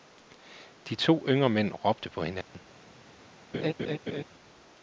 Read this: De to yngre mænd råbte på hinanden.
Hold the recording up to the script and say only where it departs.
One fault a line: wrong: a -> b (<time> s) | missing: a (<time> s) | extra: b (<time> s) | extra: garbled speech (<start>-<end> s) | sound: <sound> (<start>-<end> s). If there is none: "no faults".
sound: dropout (2.4-2.5 s)
sound: laugh (3.5-4.2 s)